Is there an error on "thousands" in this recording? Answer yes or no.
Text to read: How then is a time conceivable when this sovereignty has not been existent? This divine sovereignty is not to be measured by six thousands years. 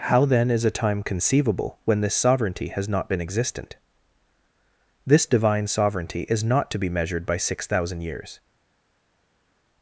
yes